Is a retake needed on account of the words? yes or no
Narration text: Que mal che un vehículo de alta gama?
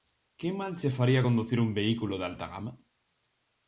yes